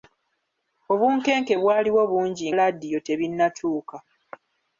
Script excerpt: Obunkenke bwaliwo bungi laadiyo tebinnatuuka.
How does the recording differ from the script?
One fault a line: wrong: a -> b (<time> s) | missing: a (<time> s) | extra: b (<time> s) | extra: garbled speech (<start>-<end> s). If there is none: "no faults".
no faults